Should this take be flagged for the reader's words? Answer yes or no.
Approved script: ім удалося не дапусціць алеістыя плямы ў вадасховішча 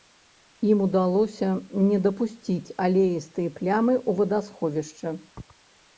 no